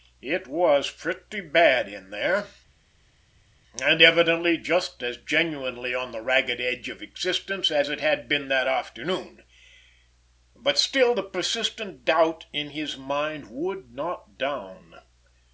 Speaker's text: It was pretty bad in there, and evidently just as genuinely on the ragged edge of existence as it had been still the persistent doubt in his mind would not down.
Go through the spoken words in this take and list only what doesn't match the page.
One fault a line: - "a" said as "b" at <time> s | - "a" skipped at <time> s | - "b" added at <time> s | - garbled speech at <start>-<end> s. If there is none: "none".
- "that afternoon but" added at 8.5 s